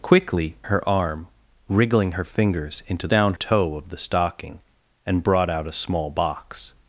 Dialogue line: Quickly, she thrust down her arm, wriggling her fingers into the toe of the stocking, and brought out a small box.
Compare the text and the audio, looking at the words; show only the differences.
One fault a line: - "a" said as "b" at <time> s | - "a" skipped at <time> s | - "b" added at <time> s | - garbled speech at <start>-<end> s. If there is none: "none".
- "she thrust down" skipped at 0.6 s
- "the" said as "down" at 3.1 s